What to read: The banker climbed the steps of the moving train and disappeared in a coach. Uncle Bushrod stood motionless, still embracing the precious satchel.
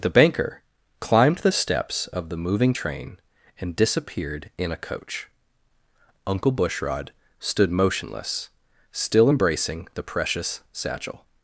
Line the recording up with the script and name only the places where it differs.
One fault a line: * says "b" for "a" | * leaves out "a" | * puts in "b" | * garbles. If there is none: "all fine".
all fine